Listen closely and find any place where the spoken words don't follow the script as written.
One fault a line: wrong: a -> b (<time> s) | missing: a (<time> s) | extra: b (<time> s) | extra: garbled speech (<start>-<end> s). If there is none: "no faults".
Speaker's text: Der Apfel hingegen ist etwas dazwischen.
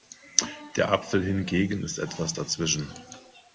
no faults